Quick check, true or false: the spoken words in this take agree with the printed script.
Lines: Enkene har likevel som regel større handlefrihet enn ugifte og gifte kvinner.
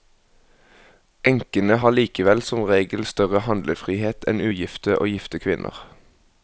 true